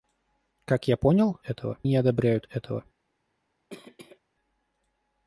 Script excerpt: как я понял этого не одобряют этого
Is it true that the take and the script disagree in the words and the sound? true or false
true